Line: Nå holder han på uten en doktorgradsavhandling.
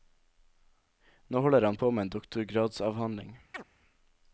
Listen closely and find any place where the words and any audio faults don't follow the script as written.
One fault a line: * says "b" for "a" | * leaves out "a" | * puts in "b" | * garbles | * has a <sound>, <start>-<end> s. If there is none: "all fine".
* says "med" for "uten"
* has a chirp, 3.5-3.6 s